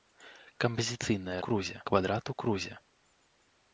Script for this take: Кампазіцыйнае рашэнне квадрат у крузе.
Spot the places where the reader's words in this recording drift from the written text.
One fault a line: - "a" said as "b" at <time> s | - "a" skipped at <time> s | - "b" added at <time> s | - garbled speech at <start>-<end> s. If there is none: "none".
- "рашэнне" said as "крузе" at 1.5 s